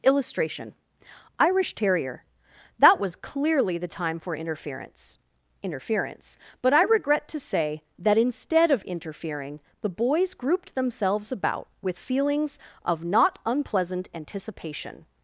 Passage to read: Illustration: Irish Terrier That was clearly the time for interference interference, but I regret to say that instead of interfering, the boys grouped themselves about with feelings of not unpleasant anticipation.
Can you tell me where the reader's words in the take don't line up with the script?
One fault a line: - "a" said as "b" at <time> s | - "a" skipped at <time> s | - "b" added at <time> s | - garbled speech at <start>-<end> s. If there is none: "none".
none